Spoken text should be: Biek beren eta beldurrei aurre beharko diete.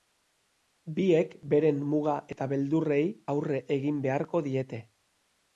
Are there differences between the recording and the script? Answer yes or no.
yes